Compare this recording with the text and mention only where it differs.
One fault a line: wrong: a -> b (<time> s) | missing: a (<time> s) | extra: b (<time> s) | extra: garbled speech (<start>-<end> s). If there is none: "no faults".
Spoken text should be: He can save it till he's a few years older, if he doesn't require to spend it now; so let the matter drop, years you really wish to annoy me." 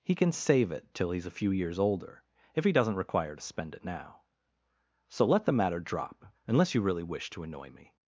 wrong: years -> unless (6.5 s)